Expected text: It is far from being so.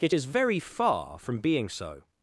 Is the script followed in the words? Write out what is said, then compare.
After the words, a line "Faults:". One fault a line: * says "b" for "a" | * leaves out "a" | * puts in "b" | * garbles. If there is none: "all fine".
It is very far from being so.
Faults:
* puts in "very"